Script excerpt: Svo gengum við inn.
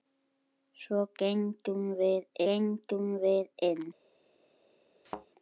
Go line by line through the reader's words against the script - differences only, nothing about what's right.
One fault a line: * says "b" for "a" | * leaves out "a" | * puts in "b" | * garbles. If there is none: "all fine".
* puts in "gengum við"